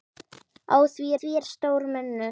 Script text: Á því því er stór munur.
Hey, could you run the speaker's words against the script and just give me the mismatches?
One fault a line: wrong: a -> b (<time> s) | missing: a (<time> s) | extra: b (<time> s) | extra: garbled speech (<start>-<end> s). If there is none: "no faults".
no faults